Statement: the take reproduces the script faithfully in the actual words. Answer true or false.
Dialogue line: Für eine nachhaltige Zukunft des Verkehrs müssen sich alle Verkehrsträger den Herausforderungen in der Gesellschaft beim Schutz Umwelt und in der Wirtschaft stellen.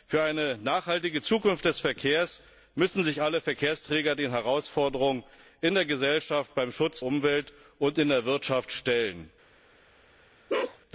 true